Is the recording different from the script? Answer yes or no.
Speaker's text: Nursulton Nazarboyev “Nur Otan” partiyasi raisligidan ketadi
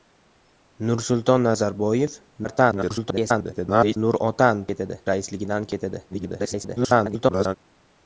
yes